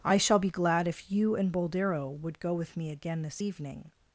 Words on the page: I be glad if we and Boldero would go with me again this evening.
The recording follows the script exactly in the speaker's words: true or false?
false